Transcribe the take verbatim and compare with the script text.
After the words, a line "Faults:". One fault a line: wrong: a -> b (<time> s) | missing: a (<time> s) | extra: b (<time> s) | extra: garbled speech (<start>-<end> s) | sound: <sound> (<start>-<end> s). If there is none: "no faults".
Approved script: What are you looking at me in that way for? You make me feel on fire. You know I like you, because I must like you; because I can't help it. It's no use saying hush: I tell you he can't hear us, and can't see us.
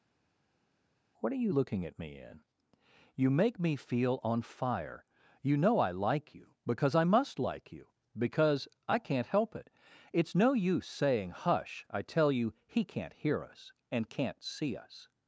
What are you looking at me in? You make me feel on fire. You know I like you, because I must like you; because I can't help it. It's no use saying hush: I tell you he can't hear us, and can't see us.
Faults:
missing: that way for (2.4 s)